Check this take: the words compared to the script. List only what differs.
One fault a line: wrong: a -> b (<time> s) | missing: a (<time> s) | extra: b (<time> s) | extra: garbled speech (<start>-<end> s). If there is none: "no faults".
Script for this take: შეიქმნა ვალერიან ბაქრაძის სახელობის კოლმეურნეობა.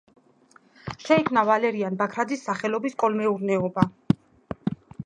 no faults